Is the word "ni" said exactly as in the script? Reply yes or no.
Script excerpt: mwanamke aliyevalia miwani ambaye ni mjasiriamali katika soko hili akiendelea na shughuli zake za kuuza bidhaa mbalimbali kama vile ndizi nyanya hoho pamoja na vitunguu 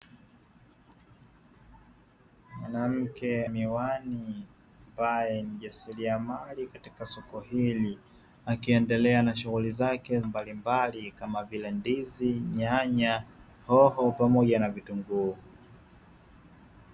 no